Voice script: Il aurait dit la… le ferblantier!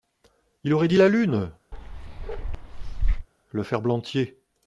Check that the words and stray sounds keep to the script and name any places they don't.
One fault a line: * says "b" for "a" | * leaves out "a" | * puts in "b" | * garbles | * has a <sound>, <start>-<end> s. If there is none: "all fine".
* puts in "lune"
* has a bark, 1.7-3.3 s